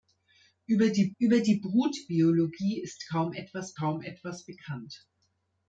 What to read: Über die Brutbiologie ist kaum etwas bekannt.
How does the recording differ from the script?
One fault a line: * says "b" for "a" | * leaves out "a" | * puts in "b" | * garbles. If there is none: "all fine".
* puts in "über die"
* puts in "kaum etwas"